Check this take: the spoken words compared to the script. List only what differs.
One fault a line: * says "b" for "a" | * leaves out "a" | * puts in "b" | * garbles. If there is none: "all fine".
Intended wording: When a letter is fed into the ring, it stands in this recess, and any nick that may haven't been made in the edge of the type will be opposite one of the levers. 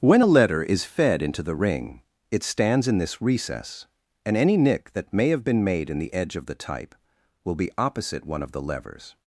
* says "have" for "haven't"